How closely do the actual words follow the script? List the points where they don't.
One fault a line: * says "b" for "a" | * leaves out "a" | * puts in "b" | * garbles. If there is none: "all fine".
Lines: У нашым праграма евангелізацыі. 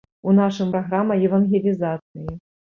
all fine